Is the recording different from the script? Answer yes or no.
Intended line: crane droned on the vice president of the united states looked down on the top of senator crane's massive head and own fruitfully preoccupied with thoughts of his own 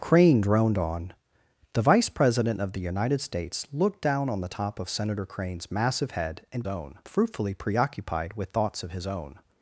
no